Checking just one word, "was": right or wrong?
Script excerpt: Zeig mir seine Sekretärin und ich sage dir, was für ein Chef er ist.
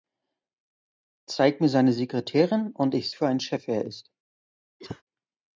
wrong